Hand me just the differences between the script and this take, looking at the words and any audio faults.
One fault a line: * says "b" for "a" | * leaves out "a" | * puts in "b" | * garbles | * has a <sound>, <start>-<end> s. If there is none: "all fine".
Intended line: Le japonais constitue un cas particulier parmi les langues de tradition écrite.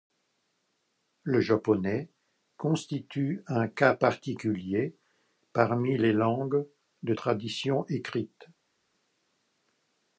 all fine